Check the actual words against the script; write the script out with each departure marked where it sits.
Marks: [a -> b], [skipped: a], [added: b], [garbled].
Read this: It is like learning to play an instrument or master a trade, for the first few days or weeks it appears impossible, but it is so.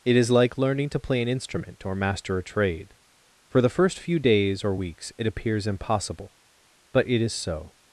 It is like learning to play an instrument or master a trade, for the first few days or weeks it appears impossible, but it is so.